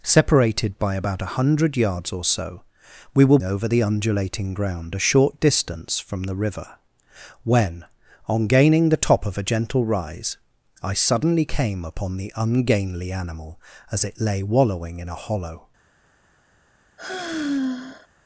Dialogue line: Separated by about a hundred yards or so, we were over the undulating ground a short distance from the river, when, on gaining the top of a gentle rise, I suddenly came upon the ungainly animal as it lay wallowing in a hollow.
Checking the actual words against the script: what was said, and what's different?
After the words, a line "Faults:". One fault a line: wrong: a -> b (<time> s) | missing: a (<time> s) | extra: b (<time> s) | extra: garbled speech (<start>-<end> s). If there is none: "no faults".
Separated by about a hundred yards or so, we were over the undulating ground a short distance from the river, when, on gaining the top of a gentle rise, I suddenly came upon the ungainly animal as it lay wallowing in a hollow.
Faults:
no faults